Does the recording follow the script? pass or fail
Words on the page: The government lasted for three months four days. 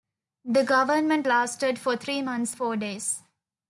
pass